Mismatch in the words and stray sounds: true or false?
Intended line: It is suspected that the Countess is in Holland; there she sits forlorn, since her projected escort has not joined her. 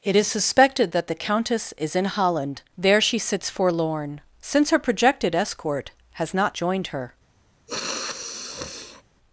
true